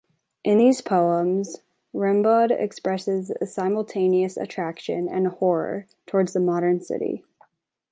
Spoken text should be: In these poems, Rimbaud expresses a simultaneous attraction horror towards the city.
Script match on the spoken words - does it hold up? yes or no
no